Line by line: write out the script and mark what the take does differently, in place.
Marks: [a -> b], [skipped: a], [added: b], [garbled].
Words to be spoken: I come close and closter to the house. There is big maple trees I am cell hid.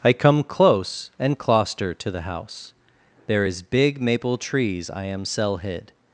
I come close and closter to the house. There is big maple trees I am cell hid.